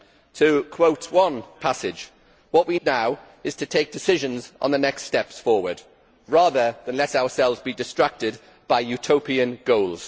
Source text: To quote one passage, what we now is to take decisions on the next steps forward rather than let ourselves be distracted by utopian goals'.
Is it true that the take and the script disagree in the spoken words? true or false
false